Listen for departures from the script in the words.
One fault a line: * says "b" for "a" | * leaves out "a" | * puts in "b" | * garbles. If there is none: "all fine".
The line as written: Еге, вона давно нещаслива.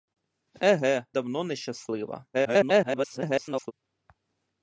* leaves out "вона"
* garbles